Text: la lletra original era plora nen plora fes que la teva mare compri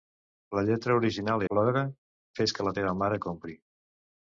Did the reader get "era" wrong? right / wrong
wrong